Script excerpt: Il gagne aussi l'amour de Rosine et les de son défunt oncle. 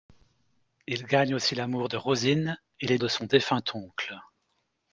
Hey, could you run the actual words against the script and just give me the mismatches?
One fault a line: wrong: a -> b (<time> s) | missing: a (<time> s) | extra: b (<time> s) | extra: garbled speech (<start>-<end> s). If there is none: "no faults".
no faults